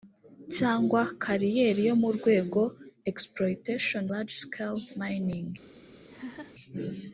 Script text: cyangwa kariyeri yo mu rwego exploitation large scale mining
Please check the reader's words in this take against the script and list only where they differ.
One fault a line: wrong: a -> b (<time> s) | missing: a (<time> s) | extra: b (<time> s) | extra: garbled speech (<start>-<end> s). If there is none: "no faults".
no faults